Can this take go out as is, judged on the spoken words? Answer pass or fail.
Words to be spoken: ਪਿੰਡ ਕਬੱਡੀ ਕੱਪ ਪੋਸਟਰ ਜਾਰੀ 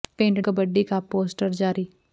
pass